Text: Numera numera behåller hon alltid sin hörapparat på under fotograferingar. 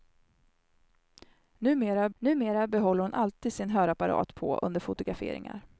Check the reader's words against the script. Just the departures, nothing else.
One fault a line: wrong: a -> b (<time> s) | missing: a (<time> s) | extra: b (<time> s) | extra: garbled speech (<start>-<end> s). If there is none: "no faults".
no faults